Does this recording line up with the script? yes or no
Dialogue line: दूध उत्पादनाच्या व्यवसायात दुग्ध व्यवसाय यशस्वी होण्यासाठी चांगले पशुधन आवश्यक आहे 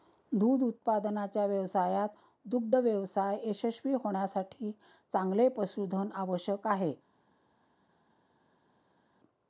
yes